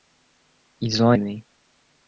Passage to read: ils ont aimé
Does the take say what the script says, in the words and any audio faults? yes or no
yes